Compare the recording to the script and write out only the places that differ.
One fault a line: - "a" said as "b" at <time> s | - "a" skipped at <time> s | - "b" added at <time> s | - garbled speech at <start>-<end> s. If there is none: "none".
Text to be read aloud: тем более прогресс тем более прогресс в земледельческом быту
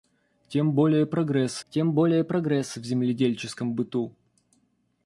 none